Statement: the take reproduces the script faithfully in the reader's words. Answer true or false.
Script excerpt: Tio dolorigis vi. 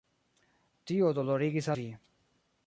true